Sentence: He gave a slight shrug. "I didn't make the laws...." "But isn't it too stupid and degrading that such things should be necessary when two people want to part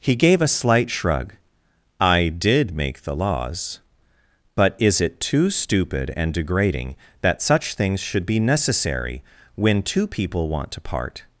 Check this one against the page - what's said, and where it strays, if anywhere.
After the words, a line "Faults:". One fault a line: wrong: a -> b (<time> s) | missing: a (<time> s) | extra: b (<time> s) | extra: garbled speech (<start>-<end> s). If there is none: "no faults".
He gave a slight shrug. "I did make the laws...." "But is it too stupid and degrading that such things should be necessary when two people want to part
Faults:
wrong: didn't -> did (2.3 s)
wrong: isn't -> is (4.8 s)